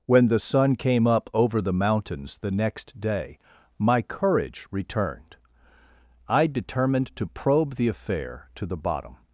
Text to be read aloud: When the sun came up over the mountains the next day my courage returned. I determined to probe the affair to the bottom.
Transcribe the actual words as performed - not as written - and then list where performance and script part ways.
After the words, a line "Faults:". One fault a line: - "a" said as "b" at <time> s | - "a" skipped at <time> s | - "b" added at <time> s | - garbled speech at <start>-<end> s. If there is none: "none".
When the sun came up over the mountains the next day my courage returned. I determined to probe the affair to the bottom.
Faults:
none